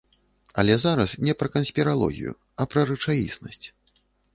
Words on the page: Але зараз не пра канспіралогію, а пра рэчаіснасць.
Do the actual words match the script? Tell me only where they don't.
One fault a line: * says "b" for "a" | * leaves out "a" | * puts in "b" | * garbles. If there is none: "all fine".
all fine